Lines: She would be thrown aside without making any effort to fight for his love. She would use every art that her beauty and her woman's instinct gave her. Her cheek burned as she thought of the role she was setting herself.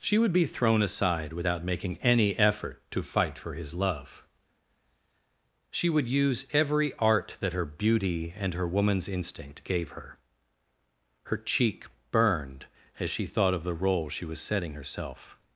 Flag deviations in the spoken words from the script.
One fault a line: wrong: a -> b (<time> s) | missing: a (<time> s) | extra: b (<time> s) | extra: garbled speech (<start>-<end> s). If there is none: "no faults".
no faults